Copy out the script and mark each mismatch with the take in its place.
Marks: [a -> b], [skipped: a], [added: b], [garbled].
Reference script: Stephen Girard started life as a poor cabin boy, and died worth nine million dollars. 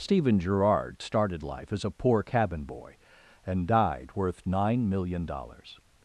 Stephen Girard started life as a poor cabin boy, and died worth nine million dollars.